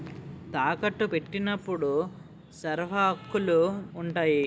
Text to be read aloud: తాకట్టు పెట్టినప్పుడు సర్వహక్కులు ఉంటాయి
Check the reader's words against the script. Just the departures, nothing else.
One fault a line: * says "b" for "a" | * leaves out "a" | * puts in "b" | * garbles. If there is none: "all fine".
all fine